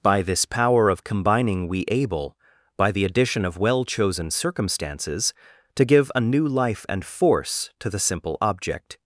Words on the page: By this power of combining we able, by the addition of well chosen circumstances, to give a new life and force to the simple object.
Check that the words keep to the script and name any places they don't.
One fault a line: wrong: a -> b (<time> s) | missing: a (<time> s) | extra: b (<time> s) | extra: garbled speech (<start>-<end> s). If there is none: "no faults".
no faults